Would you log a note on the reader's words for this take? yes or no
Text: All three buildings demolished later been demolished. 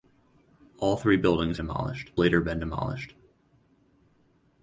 no